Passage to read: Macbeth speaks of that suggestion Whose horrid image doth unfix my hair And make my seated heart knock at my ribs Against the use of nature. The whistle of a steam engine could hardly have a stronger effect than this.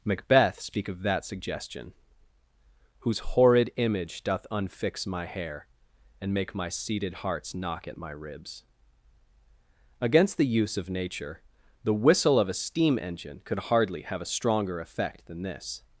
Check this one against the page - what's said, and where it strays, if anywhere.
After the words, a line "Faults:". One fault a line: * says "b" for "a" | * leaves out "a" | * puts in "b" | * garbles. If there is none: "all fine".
Macbeth speak of that suggestion Whose horrid image doth unfix my hair And make my seated hearts knock at my ribs Against the use of nature. The whistle of a steam engine could hardly have a stronger effect than this.
Faults:
* says "speak" for "speaks"
* says "hearts" for "heart"